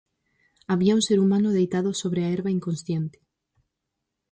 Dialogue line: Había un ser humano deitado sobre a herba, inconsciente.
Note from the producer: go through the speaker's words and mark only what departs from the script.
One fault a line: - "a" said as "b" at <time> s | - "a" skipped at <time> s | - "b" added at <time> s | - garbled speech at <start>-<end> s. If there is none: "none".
none